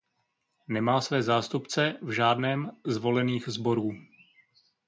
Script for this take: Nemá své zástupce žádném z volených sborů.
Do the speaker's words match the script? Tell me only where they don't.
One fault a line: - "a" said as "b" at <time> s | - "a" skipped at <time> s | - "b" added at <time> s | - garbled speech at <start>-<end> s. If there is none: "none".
- "v" added at 2.0 s